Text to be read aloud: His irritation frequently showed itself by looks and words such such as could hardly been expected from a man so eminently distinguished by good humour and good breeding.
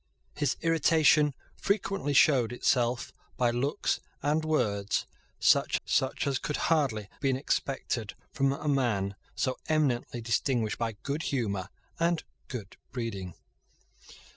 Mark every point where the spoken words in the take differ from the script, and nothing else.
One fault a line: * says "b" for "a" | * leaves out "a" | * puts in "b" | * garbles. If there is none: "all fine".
all fine